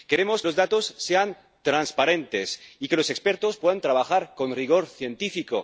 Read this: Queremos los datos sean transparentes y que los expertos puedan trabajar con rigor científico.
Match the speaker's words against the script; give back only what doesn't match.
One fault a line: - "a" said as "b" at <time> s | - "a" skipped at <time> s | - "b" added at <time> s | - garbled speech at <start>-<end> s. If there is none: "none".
none